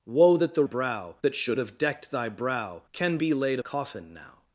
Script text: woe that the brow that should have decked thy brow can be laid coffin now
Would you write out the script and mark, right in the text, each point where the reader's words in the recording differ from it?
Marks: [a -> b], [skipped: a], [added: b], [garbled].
woe that the brow that should have decked thy brow can be laid coffin now